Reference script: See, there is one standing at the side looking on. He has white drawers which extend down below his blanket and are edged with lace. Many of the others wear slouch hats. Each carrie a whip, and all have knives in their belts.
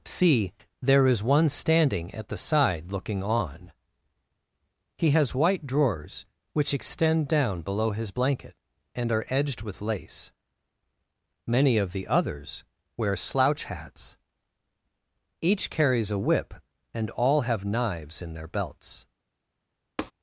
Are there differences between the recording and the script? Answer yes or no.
yes